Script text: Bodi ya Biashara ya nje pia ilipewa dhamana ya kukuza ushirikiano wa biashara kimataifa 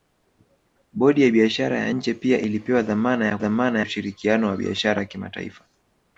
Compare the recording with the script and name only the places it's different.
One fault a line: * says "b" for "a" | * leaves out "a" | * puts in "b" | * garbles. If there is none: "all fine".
* says "dhamana" for "kukuza"